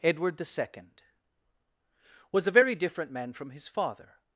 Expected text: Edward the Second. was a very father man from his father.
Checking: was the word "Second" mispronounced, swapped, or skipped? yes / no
no